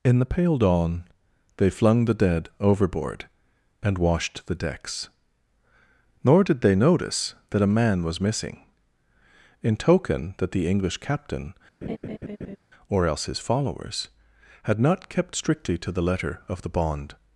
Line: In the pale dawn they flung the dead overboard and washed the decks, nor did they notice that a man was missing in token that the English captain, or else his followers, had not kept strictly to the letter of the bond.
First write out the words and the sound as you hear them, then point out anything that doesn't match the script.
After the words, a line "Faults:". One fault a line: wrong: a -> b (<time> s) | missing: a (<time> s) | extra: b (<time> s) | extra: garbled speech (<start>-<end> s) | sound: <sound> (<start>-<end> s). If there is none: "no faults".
In the pale dawn they flung the dead overboard and washed the decks, nor did they notice that a man was missing in token that the English captain, or else his followers, had not kept strictly to the letter of the bond.
Faults:
sound: laugh (11.8-12.6 s)